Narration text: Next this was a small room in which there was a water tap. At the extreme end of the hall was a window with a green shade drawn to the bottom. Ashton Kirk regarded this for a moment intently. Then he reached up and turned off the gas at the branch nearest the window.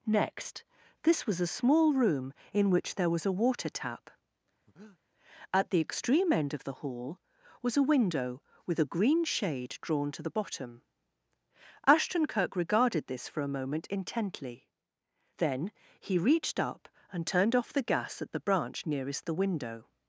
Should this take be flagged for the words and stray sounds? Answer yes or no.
yes